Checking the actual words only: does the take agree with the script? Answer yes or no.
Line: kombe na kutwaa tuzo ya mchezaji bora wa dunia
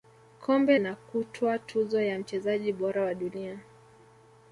yes